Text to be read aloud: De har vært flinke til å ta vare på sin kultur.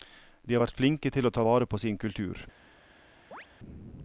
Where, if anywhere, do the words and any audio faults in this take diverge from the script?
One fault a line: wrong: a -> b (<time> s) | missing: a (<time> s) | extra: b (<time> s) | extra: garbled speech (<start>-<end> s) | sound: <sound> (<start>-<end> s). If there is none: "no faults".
sound: chirp (3.3-3.5 s)